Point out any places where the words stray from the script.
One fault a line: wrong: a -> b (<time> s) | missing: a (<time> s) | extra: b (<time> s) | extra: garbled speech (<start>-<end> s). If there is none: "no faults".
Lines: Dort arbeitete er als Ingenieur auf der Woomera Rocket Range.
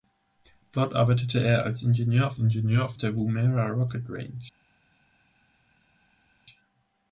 extra: Ingenieur auf (2.4 s)